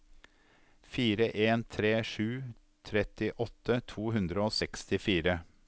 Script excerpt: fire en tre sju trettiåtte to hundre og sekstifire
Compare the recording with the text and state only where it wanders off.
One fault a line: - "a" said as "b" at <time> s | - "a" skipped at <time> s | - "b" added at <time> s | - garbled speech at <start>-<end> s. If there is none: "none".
none